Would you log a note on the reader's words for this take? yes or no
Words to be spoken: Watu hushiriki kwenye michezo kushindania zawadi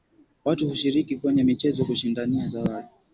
no